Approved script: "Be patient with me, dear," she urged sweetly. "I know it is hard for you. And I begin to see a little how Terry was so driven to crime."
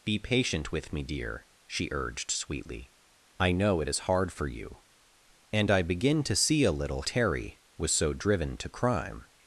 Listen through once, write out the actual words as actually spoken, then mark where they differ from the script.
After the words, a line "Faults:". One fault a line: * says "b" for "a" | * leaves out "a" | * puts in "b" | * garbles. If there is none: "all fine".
"Be patient with me, dear," she urged sweetly. "I know it is hard for you. And I begin to see a little Terry was so driven to crime."
Faults:
* leaves out "how"